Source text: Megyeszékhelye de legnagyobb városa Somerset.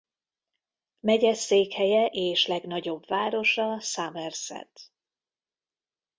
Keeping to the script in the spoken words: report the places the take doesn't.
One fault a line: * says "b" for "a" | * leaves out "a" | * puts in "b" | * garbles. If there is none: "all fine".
* says "és" for "de"